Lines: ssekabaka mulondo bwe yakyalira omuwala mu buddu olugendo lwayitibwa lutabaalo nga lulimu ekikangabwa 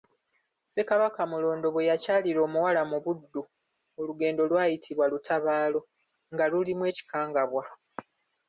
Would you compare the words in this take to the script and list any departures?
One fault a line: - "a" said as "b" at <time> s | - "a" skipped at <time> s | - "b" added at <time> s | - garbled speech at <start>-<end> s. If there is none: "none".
none